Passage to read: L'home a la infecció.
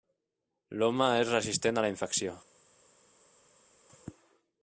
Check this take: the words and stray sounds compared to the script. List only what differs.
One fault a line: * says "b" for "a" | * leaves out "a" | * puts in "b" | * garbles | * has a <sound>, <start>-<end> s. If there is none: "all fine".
* puts in "és resistent"